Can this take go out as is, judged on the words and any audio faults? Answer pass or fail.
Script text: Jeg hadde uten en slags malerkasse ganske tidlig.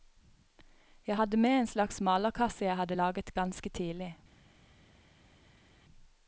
fail